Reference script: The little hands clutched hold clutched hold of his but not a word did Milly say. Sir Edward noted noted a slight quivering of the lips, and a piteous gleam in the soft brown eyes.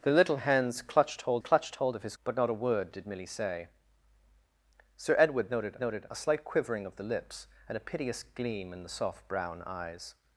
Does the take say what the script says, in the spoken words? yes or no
yes